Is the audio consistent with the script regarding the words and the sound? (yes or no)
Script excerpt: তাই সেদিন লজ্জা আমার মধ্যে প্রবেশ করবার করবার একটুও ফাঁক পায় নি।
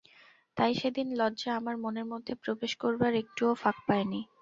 no